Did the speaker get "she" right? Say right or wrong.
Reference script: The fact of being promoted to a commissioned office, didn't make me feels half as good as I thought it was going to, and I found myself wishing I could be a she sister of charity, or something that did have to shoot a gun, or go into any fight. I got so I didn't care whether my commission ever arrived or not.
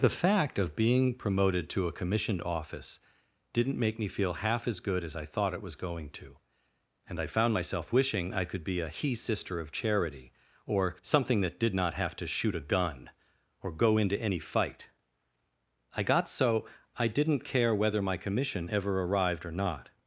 wrong